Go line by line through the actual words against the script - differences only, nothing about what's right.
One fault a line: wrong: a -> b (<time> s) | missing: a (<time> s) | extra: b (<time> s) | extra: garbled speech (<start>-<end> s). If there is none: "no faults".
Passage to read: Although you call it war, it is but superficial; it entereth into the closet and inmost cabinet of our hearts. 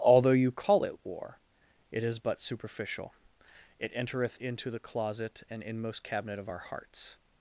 no faults